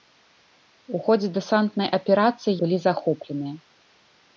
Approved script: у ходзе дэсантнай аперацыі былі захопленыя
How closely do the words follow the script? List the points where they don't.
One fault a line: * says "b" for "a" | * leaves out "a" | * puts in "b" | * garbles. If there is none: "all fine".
all fine